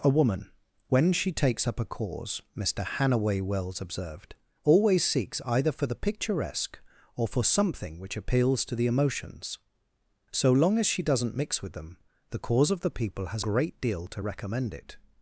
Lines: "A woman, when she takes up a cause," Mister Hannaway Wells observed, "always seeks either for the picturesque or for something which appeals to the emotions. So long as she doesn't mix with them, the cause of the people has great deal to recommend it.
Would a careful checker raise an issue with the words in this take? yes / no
no